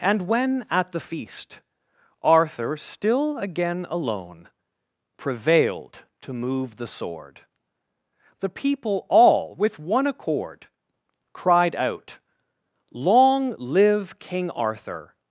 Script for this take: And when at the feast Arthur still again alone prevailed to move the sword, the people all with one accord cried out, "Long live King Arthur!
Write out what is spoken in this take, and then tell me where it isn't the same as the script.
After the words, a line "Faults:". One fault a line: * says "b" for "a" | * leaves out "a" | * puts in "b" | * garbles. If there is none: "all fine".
And when at the feast Arthur still again alone prevailed to move the sword, the people all with one accord cried out, "Long live King Arthur!
Faults:
all fine